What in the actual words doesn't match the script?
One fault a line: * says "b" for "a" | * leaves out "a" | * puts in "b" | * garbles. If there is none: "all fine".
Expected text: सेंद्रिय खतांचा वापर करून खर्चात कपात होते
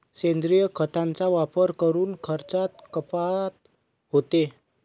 all fine